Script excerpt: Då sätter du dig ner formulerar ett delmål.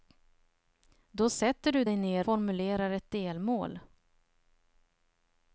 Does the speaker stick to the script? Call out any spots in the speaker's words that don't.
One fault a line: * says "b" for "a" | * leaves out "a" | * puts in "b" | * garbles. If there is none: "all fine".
all fine